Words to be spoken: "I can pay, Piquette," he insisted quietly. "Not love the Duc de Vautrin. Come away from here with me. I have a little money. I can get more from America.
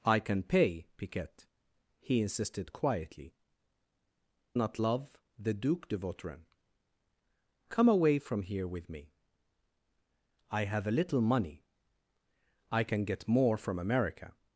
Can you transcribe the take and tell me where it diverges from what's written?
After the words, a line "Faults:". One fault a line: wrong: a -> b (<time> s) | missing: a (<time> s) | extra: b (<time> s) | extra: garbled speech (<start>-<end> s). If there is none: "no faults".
"I can pay, Piquette," he insisted quietly. "Not love the Duc de Vautrin. Come away from here with me. I have a little money. I can get more from America.
Faults:
no faults